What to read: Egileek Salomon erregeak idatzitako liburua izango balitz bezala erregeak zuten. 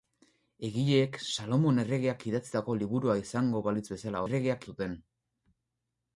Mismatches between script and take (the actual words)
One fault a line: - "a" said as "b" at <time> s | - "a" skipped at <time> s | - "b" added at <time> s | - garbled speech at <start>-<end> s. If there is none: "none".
none